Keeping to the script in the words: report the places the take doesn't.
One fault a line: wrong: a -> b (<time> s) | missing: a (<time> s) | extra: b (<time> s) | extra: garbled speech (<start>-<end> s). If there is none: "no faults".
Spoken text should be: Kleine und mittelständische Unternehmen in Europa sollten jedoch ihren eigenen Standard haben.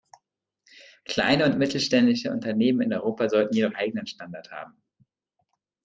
missing: ihren (3.7 s)